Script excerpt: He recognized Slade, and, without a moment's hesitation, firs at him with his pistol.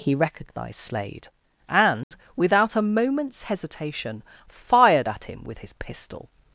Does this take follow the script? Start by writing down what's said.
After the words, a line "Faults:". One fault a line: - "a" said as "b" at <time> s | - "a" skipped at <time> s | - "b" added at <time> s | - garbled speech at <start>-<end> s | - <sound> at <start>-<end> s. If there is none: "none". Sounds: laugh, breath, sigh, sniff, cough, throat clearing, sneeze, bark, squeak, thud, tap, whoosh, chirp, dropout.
He recognized Slade, and, without a moment's hesitation, fired at him with his pistol.
Faults:
- dropout at 2.0-2.1 s
- "firs" said as "fired" at 4.5 s